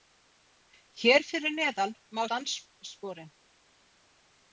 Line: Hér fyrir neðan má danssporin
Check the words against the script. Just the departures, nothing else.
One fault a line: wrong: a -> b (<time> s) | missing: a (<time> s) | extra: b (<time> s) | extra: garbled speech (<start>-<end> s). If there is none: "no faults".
no faults